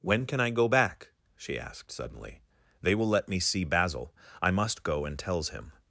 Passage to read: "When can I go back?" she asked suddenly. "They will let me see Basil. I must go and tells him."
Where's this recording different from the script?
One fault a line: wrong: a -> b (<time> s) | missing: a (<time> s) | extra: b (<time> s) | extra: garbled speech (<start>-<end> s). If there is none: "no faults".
no faults